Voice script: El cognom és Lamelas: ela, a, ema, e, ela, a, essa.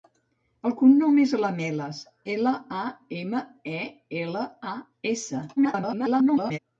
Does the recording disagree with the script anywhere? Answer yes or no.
yes